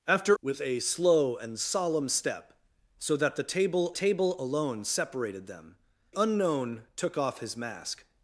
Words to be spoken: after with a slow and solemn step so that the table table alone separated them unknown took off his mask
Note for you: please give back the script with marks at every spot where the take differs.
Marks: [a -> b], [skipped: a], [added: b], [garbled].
after with a slow and solemn step so that the table table alone separated them unknown took off his mask